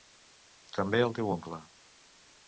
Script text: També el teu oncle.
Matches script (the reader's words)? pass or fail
pass